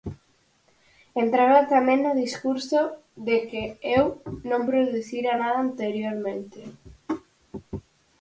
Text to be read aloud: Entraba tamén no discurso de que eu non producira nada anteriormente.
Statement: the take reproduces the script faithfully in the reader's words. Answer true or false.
true